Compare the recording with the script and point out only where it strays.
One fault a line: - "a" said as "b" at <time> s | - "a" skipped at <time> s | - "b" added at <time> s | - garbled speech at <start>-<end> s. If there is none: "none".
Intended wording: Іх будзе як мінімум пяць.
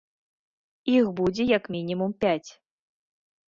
none